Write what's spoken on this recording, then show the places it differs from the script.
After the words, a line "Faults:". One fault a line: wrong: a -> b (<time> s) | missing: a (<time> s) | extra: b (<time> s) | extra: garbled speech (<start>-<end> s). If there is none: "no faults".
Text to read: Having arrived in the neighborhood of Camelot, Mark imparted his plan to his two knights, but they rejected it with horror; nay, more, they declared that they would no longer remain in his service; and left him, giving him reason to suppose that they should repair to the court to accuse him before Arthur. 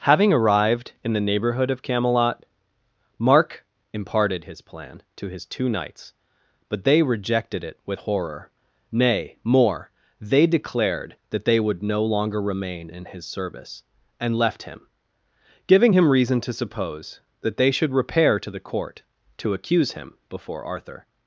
Having arrived in the neighborhood of Camelot, Mark imparted his plan to his two knights, but they rejected it with horror; nay, more, they declared that they would no longer remain in his service; and left him, giving him reason to suppose that they should repair to the court to accuse him before Arthur.
Faults:
no faults